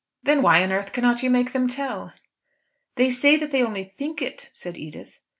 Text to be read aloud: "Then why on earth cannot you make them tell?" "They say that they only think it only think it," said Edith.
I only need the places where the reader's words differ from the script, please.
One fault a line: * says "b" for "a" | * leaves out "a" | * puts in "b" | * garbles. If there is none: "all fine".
* leaves out "only think it"